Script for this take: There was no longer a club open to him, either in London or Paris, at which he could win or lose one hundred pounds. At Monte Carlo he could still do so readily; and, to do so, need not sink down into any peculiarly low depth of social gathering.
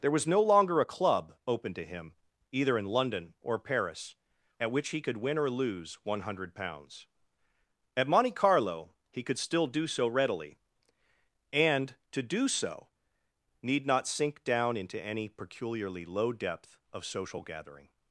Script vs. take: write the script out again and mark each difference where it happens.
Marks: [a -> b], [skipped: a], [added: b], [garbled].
There was no longer a club open to him, either in London or Paris, at which he could win or lose one hundred pounds. At Monte Carlo he could still do so readily; and, to do so, need not sink down into any peculiarly low depth of social gathering.